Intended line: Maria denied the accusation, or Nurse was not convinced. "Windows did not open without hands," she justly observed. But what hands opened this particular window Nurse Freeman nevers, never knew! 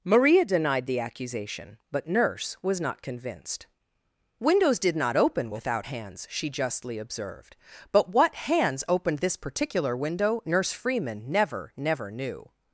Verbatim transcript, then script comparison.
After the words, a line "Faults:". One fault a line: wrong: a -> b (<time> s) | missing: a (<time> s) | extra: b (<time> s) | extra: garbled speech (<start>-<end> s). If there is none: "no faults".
Maria denied the accusation, but Nurse was not convinced. "Windows did not open without hands," she justly observed. But what hands opened this particular window Nurse Freeman never, never knew!
Faults:
wrong: or -> but (1.9 s)
wrong: nevers -> never (11.3 s)